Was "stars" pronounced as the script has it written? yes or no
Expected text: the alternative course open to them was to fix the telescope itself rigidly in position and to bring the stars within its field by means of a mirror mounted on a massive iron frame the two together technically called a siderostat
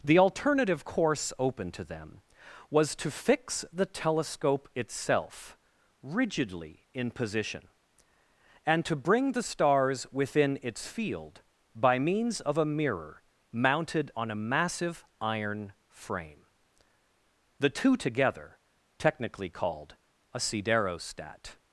yes